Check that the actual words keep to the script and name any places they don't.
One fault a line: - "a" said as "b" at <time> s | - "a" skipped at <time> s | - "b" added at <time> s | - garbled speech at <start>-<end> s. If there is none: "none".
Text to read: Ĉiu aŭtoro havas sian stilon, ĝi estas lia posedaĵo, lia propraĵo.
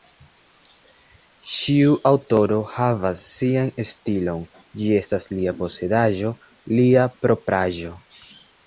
none